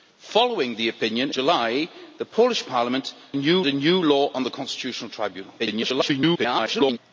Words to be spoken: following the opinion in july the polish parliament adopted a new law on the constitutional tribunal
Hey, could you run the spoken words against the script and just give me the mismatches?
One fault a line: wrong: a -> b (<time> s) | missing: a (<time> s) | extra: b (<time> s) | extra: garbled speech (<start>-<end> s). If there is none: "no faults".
missing: in (1.3 s)
wrong: adopted -> new (3.4 s)
extra: garbled speech (5.6-7.0 s)